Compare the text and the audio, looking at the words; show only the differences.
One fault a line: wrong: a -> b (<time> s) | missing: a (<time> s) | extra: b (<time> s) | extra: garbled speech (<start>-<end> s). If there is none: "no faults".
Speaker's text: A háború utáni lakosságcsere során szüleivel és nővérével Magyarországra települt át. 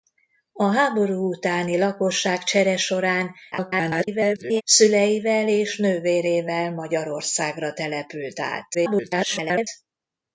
extra: garbled speech (3.5-4.6 s)
extra: garbled speech (8.7-9.7 s)